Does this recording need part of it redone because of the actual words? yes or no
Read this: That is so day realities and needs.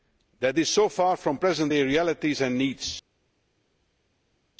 yes